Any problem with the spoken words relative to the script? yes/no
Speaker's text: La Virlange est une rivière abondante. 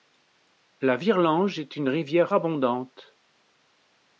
no